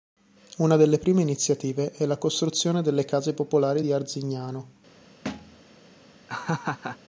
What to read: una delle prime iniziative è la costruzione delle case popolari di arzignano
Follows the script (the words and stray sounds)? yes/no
no